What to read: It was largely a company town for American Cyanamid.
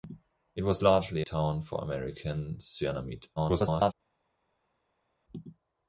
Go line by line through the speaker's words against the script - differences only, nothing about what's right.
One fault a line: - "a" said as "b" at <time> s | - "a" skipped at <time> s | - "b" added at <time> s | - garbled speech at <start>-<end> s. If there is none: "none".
- "a company" skipped at 1.2 s
- garbled speech at 3.4-3.9 s